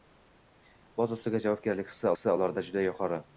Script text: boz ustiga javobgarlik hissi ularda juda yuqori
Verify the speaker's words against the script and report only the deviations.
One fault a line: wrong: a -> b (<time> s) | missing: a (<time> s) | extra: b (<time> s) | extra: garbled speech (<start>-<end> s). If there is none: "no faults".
extra: hissi (2.1 s)